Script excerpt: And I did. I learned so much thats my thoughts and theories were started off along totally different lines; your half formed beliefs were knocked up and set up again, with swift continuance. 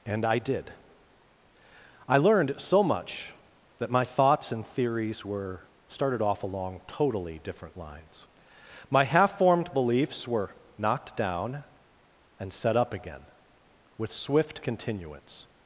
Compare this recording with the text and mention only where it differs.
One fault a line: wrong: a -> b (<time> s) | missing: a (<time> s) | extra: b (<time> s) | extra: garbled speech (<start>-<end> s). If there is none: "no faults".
wrong: thats -> that (3.8 s)
wrong: your -> my (8.9 s)
wrong: up -> down (11.2 s)